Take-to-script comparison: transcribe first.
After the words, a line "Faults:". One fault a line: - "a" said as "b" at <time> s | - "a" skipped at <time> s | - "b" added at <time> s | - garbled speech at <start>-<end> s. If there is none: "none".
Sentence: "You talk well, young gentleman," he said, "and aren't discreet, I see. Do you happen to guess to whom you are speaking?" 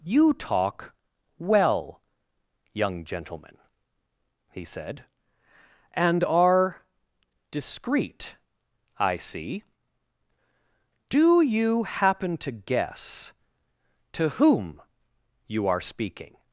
"You talk well, young gentleman," he said, "and are discreet, I see. Do you happen to guess to whom you are speaking?"
Faults:
- "aren't" said as "are" at 6.2 s